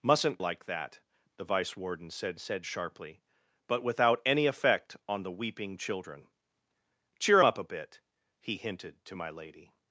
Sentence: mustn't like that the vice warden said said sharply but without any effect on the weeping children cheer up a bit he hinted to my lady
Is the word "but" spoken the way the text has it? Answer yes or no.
yes